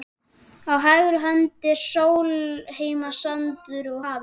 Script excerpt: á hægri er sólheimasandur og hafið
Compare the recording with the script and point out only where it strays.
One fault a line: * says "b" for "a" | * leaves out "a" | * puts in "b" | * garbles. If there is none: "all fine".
* puts in "hönd"